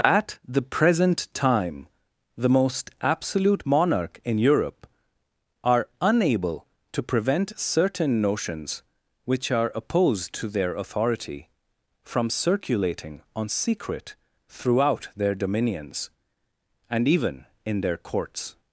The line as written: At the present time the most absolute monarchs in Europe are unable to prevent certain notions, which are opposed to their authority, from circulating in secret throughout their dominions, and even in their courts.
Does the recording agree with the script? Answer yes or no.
no